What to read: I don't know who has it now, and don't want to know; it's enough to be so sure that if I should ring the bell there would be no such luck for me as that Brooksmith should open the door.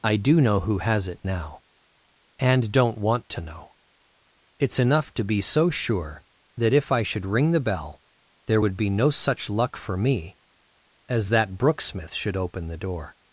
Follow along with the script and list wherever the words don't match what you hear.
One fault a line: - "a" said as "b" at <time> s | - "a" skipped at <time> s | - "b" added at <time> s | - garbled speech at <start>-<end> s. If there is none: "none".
- "don't" said as "do" at 0.1 s